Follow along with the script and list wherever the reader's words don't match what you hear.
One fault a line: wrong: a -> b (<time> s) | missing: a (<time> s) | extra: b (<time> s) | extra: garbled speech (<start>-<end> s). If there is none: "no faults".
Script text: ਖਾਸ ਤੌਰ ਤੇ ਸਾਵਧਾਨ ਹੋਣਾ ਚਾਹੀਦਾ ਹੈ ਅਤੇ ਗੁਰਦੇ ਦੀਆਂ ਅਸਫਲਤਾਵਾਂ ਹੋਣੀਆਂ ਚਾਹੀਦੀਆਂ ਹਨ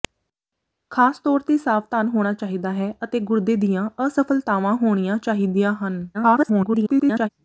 extra: garbled speech (6.1-7.3 s)